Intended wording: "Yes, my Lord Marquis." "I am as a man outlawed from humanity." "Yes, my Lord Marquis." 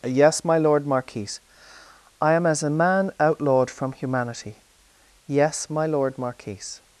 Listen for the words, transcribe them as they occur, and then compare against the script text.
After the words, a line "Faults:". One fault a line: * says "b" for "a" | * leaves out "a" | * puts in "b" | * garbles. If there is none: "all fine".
"Yes, my Lord Marquis." "I am as a man outlawed from humanity." "Yes, my Lord Marquis."
Faults:
all fine